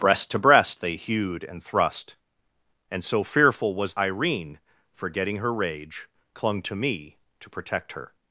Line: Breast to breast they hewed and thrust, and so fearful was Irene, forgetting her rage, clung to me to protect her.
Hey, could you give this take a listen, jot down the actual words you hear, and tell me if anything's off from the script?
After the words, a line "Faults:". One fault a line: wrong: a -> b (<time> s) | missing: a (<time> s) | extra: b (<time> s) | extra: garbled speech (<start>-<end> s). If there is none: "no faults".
Breast to breast they hewed and thrust, and so fearful was Irene, forgetting her rage, clung to me to protect her.
Faults:
no faults